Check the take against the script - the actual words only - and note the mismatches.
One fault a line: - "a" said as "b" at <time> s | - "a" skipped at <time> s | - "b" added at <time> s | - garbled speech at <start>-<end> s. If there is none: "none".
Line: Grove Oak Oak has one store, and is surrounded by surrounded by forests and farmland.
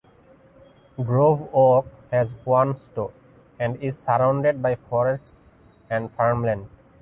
- "Oak" skipped at 1.9 s
- "surrounded by" skipped at 4.8 s